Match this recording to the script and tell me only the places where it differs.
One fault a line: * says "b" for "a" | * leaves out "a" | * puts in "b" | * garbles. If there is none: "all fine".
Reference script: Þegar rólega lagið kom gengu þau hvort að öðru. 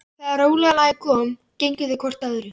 all fine